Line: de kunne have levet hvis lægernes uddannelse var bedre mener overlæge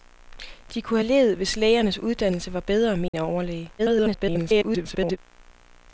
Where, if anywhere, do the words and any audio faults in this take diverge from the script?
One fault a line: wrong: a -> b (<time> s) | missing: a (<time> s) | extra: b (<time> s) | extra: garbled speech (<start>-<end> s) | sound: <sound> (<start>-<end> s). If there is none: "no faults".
sound: dropout (3.1-3.1 s)
extra: garbled speech (3.8-5.2 s)